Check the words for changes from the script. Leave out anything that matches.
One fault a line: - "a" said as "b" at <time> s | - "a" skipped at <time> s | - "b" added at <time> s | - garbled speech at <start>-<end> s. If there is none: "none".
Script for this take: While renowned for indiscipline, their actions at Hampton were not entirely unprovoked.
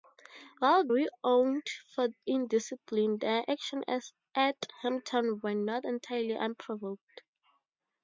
none